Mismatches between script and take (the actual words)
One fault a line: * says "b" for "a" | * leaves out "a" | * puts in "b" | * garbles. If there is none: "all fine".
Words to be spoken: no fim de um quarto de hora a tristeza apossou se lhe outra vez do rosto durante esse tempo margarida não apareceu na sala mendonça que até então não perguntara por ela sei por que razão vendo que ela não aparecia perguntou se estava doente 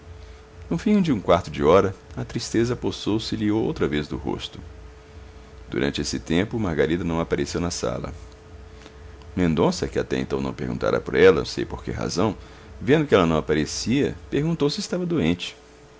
all fine